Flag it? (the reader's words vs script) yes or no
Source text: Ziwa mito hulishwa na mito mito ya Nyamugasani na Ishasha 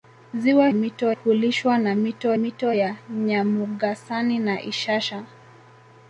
no